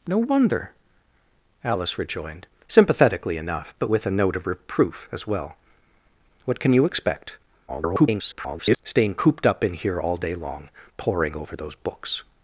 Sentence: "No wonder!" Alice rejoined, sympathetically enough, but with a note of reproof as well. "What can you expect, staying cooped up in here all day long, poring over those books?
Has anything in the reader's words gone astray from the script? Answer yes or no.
yes